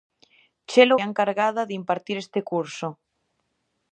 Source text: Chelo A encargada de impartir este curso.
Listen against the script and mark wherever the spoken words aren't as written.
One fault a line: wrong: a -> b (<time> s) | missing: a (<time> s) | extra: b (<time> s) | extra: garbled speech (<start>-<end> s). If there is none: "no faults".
no faults